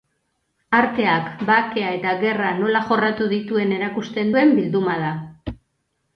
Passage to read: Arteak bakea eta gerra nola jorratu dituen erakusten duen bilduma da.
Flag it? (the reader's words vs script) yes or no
no